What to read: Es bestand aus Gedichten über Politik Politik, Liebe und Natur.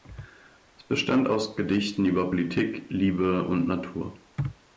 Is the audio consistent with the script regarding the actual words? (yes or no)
no